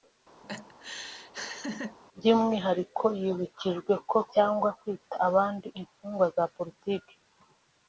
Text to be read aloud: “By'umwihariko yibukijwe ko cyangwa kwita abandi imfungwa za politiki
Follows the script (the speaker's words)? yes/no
yes